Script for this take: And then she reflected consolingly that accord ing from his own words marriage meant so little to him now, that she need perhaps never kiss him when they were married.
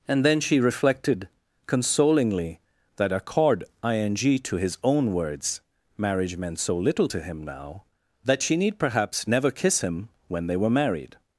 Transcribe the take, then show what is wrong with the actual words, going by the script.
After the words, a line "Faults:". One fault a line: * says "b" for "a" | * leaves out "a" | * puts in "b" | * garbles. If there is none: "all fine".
And then she reflected consolingly that accord ing to his own words marriage meant so little to him now, that she need perhaps never kiss him when they were married.
Faults:
* says "to" for "from"